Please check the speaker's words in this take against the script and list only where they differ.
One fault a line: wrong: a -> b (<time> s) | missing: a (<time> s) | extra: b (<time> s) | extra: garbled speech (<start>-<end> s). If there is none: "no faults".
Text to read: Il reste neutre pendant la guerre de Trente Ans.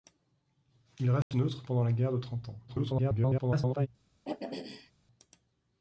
extra: garbled speech (2.7-3.9 s)